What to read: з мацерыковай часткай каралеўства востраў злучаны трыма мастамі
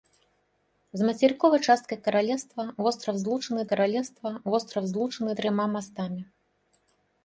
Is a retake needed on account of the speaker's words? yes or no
yes